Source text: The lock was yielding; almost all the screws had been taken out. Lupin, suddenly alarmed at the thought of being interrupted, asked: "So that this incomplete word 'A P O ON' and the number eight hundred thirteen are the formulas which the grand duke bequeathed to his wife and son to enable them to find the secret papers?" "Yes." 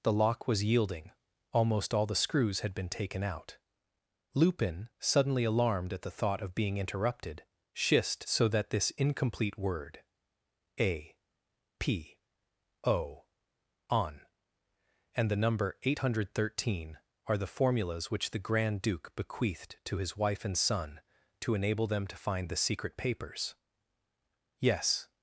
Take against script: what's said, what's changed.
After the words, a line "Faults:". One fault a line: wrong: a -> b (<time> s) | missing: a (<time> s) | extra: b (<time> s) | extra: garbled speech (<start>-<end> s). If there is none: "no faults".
The lock was yielding; almost all the screws had been taken out. Lupin, suddenly alarmed at the thought of being interrupted, shist: "So that this incomplete word 'A P O ON' and the number eight hundred thirteen are the formulas which the grand duke bequeathed to his wife and son to enable them to find the secret papers?" "Yes."
Faults:
wrong: asked -> shist (7.8 s)